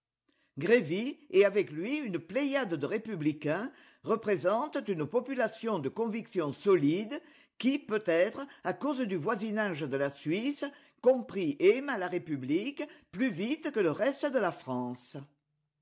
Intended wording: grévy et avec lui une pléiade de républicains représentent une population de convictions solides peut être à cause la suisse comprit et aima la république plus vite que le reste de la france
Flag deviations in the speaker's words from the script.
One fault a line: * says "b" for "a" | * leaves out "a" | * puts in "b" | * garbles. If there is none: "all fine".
* puts in "qui"
* puts in "du voisinage de"